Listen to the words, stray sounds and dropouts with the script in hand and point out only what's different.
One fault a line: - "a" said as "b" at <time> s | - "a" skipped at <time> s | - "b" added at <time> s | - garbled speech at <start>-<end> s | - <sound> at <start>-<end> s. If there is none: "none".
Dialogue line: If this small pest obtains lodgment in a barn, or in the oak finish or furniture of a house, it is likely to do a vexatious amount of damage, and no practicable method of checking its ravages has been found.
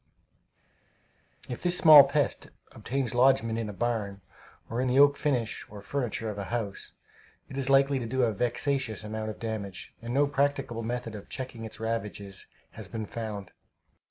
none